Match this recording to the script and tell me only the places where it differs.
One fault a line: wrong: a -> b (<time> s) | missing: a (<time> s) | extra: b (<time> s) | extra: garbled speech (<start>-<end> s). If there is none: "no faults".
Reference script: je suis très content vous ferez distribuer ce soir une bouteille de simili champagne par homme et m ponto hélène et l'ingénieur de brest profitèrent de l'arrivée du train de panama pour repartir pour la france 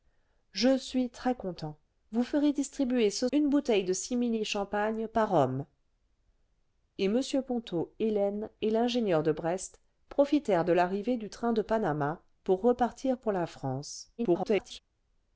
missing: soir (3.3 s)
extra: garbled speech (14.2-14.8 s)